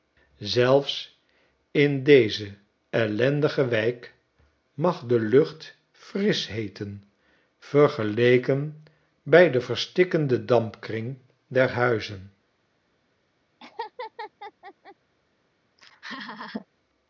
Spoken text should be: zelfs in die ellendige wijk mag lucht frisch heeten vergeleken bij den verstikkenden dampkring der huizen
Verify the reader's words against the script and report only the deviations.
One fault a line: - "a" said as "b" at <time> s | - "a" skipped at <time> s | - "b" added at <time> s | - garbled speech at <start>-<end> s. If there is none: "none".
- "die" said as "deze" at 2.0 s
- "de" added at 5.1 s